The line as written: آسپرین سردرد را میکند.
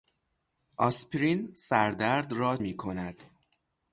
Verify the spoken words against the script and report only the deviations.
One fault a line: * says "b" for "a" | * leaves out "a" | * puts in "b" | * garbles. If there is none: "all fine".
all fine